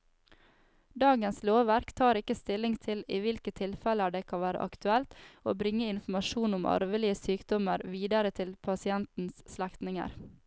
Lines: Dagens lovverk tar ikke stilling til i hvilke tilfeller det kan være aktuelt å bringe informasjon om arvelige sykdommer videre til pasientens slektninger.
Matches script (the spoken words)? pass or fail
pass